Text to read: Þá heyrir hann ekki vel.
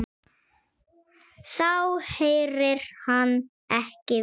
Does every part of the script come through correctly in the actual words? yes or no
yes